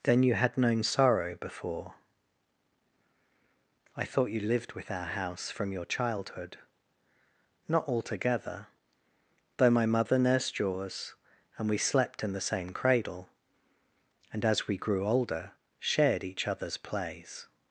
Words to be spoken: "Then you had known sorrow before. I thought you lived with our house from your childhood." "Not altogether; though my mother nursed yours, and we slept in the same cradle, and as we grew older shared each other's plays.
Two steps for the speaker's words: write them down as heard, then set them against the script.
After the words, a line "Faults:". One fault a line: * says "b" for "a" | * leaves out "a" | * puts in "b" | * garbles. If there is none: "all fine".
"Then you had known sorrow before. I thought you lived with our house from your childhood." "Not altogether; though my mother nursed yours, and we slept in the same cradle, and as we grew older shared each other's plays.
Faults:
all fine